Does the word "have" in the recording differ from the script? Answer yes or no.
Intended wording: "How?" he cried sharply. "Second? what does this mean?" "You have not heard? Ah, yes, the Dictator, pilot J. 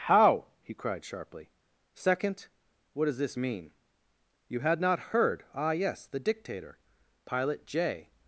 yes